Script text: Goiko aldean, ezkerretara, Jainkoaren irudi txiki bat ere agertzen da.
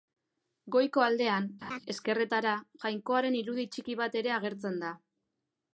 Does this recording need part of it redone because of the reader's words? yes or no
no